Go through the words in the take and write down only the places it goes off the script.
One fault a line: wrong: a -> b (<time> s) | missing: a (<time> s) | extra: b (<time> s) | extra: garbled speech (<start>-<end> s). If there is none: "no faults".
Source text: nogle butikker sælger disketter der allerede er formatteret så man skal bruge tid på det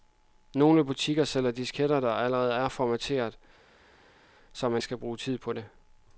no faults